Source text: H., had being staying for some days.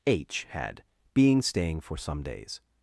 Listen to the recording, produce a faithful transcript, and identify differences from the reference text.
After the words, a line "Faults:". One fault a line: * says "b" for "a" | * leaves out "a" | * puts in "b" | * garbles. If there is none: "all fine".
H., had being staying for some days.
Faults:
all fine